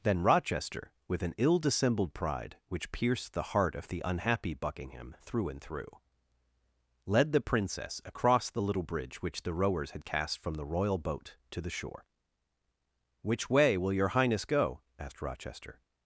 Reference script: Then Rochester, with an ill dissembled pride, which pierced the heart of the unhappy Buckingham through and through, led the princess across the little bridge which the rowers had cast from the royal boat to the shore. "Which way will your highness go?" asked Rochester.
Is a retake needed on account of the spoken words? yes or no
no